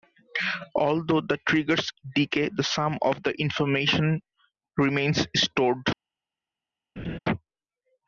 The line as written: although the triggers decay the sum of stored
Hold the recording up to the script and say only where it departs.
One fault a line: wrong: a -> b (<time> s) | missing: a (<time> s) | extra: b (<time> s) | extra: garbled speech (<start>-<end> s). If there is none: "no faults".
extra: the information remains (3.2 s)